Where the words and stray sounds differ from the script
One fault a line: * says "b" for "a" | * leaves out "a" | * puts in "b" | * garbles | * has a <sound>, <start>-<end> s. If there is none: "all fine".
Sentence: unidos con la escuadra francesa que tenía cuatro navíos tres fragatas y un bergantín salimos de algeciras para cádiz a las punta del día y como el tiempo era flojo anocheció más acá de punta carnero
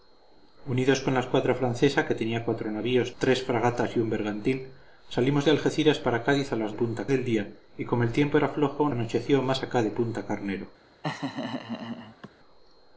* has a laugh, 11.0-12.3 s